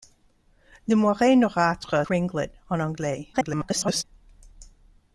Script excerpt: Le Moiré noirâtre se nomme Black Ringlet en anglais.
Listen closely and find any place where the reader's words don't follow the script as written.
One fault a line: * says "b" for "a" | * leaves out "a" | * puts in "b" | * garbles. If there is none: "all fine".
* leaves out "se nomme Black"
* garbles